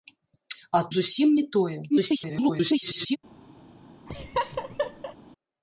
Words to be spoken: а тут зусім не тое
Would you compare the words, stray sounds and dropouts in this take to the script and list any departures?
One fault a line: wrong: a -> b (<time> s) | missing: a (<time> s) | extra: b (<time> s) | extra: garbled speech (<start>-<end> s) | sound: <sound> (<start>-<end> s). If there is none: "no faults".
missing: тут (0.8 s)
extra: garbled speech (1.9-3.2 s)
sound: laugh (4.1-5.2 s)